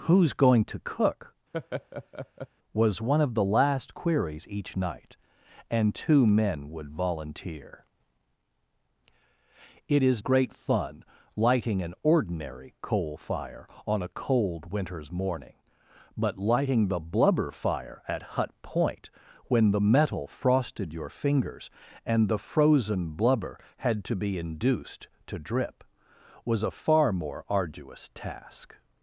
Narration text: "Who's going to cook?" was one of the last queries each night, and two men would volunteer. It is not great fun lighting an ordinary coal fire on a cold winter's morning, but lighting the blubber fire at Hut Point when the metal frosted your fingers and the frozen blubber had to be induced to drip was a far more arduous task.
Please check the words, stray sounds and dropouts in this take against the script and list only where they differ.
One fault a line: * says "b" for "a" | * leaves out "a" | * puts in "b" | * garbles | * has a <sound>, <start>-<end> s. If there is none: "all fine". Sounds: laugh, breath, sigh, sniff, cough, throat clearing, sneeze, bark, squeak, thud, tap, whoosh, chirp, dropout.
* has a laugh, 1.5-2.5 s
* leaves out "not"